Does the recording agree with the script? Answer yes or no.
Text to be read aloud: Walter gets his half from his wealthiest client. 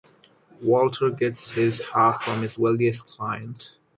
yes